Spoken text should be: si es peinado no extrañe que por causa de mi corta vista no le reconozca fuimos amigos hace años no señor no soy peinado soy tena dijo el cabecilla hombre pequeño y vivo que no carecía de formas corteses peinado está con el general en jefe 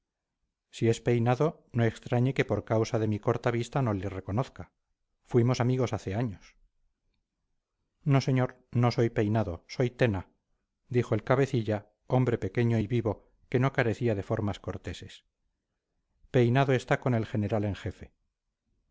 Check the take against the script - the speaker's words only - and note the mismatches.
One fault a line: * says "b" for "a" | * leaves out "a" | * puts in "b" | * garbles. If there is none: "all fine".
all fine